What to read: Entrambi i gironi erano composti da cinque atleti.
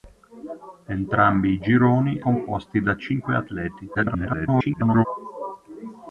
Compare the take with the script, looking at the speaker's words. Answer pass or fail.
fail